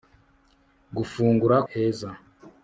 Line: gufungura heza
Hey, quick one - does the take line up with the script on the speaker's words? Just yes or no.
yes